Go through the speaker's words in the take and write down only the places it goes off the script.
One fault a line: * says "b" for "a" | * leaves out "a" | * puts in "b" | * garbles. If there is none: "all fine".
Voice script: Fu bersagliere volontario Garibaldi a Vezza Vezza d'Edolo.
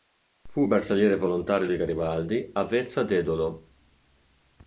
* puts in "di"
* leaves out "Vezza"